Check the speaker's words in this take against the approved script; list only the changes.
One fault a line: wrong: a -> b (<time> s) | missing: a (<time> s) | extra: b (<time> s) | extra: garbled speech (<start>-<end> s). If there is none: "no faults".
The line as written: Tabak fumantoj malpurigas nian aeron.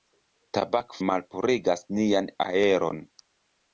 missing: fumantoj (0.9 s)